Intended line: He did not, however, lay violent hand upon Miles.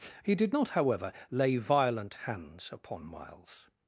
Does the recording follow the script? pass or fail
fail